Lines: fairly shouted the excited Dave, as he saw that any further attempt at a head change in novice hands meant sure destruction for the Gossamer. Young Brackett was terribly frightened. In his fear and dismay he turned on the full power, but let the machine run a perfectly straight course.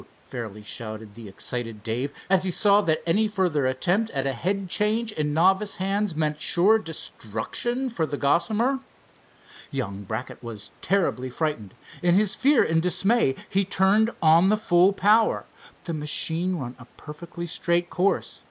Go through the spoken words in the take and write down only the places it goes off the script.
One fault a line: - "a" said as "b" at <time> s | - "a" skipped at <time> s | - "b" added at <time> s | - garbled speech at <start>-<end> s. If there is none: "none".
- "but let" skipped at 15.5 s